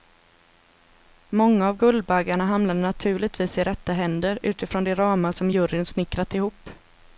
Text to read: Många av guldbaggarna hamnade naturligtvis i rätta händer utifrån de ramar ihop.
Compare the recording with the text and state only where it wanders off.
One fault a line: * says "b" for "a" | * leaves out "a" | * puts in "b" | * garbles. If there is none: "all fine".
* puts in "som juryn snickrat"